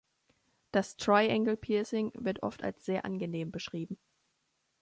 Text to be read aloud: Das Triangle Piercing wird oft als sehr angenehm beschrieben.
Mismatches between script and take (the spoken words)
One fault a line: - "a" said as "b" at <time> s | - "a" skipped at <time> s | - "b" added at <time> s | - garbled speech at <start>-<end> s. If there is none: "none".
none